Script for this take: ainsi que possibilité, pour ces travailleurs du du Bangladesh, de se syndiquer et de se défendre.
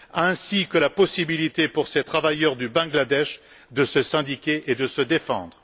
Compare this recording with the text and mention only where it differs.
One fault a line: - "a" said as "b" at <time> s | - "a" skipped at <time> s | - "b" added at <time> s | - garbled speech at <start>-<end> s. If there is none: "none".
- "la" added at 0.8 s
- "du" skipped at 2.7 s